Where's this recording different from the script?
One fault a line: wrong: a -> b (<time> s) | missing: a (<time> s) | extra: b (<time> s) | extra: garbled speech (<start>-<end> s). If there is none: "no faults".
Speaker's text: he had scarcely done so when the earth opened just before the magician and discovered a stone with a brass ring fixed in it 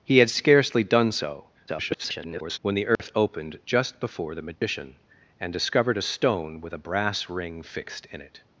extra: garbled speech (1.7-2.6 s)